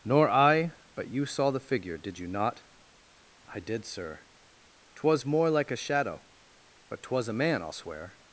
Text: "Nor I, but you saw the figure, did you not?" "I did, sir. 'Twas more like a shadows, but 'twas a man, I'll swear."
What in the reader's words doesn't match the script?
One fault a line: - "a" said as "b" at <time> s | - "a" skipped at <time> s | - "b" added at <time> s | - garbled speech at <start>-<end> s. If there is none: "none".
- "shadows" said as "shadow" at 5.8 s